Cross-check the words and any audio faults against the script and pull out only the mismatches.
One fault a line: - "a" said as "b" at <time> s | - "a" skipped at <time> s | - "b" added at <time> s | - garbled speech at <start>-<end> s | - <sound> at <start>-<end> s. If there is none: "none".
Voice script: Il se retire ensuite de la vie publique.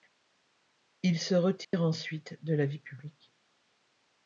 - dropout at 1.6-1.7 s